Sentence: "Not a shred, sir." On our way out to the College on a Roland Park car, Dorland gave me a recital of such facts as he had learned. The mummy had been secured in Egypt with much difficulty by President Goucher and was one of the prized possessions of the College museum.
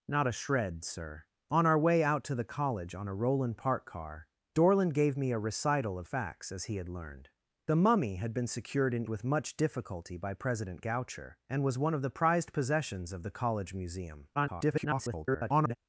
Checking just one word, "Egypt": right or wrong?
wrong